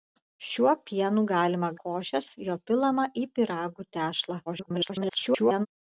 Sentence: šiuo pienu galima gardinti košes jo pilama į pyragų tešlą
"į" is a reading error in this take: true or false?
false